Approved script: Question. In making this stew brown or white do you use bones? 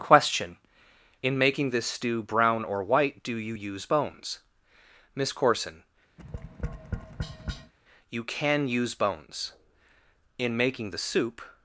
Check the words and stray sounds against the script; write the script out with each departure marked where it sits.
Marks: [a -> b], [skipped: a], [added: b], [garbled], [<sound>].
Question. In making this stew brown or white do you use bones? [added: MISS CORSON You can use bones In making the soup] [tap]